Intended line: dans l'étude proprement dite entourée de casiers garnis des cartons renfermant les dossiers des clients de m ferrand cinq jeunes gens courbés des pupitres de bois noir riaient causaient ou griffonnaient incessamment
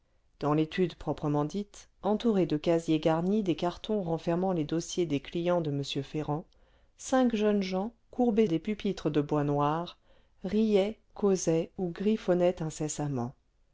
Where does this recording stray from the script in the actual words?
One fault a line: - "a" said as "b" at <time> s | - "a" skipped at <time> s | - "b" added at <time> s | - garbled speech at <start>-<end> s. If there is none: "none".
none